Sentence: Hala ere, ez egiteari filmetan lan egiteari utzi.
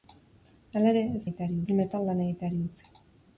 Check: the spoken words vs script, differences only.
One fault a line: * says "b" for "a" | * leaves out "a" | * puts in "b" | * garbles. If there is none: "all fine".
all fine